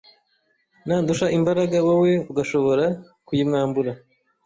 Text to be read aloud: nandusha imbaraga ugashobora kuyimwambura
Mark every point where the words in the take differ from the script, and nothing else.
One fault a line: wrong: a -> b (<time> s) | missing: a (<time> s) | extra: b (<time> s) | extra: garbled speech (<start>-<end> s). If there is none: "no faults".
extra: wowe (1.9 s)